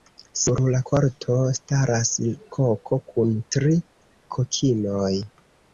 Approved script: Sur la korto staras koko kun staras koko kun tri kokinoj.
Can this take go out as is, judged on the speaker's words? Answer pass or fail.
fail